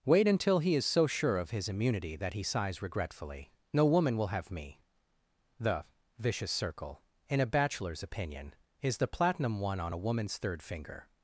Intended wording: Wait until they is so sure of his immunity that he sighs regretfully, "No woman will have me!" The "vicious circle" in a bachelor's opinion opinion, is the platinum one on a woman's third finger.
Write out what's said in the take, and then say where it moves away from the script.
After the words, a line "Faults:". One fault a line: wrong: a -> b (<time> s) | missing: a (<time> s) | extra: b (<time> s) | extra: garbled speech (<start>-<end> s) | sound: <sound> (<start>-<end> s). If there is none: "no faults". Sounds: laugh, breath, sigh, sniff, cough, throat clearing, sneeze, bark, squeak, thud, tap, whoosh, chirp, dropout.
Wait until he is so sure of his immunity that he sighs regretfully, "No woman will have me!" The "vicious circle" in a bachelor's opinion, is the platinum one on a woman's third finger.
Faults:
wrong: they -> he (0.6 s)
missing: opinion (8.6 s)